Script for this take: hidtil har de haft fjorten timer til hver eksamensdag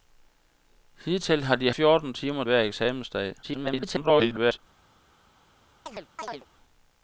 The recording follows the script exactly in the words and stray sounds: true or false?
false